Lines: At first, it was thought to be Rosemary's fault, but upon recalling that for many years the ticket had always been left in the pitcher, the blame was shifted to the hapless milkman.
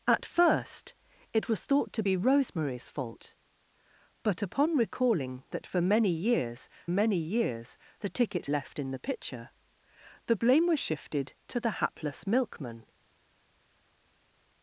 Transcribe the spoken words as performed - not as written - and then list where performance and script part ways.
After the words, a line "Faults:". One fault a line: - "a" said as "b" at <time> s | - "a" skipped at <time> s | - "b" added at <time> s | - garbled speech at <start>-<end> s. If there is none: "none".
At first, it was thought to be Rosemary's fault, but upon recalling that for many years many years the ticket left in the pitcher, the blame was shifted to the hapless milkman.
Faults:
- "many years" added at 6.9 s
- "had always been" skipped at 8.5 s